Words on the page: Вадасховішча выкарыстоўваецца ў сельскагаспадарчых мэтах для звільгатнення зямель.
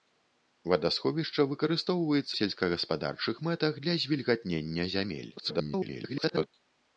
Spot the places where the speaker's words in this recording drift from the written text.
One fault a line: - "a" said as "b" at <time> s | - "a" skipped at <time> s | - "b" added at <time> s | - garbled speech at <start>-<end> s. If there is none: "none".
- "ў" skipped at 2.3 s
- garbled speech at 5.4-6.5 s